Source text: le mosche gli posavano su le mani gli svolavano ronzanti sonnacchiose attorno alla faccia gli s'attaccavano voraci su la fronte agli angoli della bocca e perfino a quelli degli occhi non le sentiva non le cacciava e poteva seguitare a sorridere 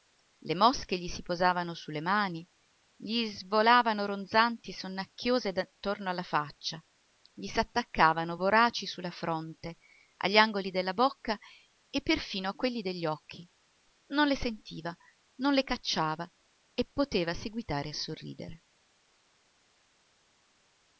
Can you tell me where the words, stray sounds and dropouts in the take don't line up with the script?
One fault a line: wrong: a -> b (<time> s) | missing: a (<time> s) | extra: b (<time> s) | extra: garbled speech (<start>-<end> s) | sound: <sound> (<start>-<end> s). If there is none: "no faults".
extra: si (1.1 s)